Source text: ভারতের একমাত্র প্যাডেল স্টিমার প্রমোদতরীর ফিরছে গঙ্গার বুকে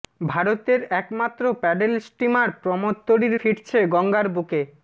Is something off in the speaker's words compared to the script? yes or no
no